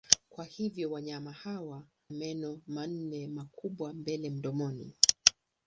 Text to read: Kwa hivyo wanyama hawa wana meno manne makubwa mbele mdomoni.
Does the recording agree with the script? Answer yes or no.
no